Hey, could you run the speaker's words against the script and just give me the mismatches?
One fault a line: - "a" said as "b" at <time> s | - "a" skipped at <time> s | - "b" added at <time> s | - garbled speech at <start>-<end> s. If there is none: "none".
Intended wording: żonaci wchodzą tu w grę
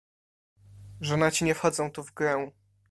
- "nie" added at 1.4 s